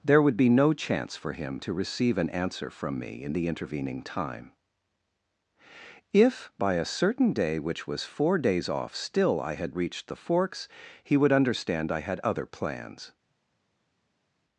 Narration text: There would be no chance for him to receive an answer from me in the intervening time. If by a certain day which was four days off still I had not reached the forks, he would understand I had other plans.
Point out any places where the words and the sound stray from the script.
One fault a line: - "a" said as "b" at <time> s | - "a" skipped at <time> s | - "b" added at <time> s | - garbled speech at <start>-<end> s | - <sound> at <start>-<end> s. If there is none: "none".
- "not" skipped at 9.7 s